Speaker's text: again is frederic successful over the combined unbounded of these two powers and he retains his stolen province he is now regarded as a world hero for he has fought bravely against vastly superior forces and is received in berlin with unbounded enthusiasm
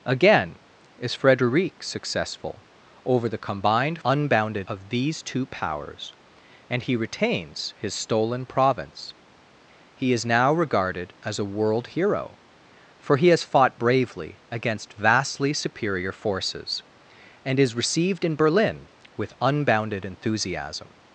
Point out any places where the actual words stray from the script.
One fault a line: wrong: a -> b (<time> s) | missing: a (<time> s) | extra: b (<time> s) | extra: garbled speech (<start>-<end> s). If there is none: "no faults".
no faults